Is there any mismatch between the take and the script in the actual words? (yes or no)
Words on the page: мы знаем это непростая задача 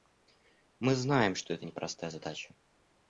yes